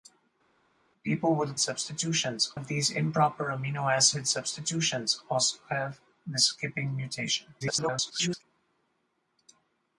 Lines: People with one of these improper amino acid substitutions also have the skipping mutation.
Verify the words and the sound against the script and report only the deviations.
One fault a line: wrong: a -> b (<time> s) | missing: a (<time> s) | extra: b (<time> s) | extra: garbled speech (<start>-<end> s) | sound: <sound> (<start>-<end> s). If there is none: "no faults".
wrong: one -> substitutions (1.6 s)
extra: garbled speech (7.6-8.4 s)